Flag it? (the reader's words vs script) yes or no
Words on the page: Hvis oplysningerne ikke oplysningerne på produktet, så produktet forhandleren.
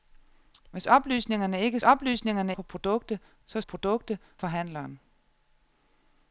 no